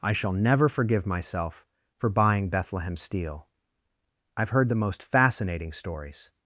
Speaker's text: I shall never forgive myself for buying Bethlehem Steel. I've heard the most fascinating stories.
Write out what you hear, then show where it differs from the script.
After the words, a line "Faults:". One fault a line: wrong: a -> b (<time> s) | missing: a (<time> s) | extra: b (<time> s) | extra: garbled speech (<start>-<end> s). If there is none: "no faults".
I shall never forgive myself for buying Bethlehem Steel. I've heard the most fascinating stories.
Faults:
no faults